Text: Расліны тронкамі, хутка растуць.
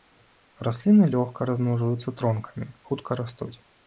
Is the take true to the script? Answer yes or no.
no